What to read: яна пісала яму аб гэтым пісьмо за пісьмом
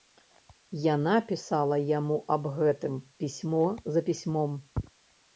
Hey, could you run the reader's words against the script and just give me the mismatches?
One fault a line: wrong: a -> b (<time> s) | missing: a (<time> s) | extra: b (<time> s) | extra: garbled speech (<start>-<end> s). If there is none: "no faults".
no faults